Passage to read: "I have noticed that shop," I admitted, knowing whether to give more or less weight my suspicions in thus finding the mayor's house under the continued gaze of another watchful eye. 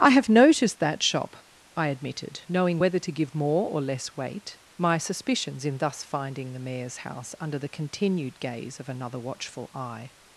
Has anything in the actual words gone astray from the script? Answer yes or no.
no